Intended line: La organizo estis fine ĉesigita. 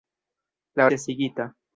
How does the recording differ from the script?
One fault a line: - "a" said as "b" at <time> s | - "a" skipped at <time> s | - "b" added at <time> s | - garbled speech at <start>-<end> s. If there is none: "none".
- "organizo estis fine" skipped at 0.9 s